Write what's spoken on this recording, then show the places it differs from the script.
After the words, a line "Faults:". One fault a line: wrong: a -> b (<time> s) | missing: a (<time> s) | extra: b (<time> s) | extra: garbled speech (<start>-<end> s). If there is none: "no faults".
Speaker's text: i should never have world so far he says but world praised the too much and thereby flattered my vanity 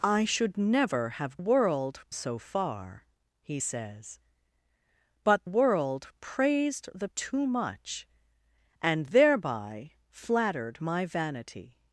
i should never have world so far he says but world praised the too much and thereby flattered my vanity
Faults:
no faults